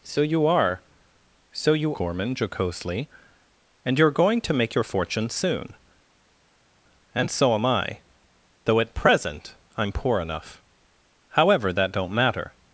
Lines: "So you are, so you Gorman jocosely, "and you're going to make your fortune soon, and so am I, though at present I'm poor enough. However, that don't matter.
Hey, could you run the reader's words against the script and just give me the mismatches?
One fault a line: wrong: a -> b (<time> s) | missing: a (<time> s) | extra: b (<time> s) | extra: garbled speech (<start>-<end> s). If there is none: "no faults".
no faults